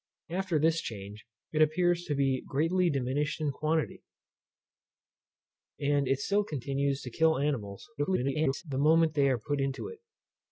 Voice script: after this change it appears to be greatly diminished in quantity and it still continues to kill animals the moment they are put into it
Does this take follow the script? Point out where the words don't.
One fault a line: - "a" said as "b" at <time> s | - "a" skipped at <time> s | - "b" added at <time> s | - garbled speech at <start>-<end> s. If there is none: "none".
- garbled speech at 8.0-8.6 s